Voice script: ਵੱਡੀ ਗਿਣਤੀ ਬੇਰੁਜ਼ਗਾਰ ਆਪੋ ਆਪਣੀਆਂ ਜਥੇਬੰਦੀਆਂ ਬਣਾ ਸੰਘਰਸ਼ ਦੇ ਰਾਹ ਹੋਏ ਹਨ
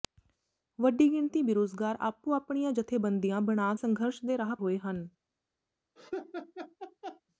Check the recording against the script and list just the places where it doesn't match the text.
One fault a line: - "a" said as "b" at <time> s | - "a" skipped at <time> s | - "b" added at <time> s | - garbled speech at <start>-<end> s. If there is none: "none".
none